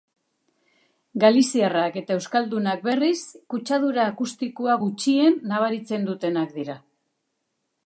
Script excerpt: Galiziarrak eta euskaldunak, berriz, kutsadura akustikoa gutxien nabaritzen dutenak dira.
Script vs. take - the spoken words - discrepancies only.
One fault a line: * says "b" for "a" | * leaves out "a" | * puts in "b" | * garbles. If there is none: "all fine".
all fine